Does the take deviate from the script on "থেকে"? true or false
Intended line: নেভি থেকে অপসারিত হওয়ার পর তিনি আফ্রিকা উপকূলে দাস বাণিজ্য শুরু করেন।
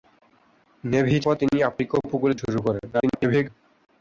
true